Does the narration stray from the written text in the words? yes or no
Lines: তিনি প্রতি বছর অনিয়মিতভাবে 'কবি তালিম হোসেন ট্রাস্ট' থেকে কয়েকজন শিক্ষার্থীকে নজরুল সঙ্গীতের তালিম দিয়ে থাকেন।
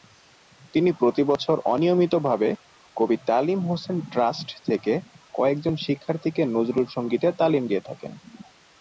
no